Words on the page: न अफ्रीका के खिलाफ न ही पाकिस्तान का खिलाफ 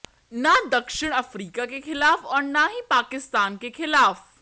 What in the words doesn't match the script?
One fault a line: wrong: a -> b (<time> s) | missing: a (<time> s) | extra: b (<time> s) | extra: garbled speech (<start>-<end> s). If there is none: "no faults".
extra: दक्षिण (0.7 s)
extra: और (2.2 s)
wrong: का -> के (3.6 s)